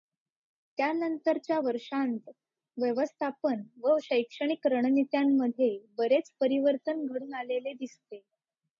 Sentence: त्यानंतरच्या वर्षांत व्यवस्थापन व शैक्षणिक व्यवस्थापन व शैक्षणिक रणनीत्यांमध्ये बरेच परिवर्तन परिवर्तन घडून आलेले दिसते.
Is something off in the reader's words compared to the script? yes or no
yes